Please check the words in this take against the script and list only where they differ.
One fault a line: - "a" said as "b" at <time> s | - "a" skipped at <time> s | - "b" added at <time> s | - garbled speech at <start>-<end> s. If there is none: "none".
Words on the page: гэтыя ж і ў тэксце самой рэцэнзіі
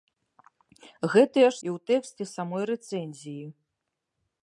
none